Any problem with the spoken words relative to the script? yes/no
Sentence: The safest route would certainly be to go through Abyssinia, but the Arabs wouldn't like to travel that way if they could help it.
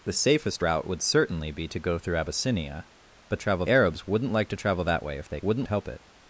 yes